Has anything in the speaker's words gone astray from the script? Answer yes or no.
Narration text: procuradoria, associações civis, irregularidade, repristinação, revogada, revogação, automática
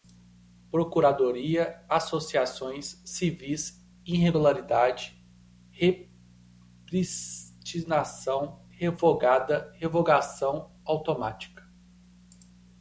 no